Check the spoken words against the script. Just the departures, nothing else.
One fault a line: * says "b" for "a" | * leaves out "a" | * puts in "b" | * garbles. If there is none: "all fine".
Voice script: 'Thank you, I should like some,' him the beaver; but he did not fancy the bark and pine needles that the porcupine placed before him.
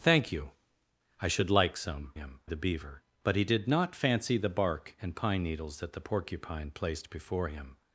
all fine